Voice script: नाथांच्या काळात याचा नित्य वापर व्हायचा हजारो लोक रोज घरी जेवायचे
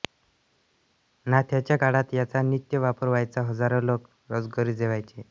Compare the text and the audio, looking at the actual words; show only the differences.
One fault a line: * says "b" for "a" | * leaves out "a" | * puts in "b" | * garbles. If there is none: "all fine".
all fine